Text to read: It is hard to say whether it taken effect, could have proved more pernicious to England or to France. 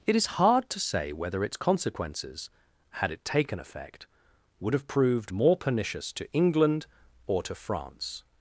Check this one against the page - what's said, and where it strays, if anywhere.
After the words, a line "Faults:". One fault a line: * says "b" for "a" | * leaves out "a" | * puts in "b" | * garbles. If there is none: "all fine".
It is hard to say whether its consequences, had it taken effect, would have proved more pernicious to England or to France.
Faults:
* puts in "its consequences had"
* says "would" for "could"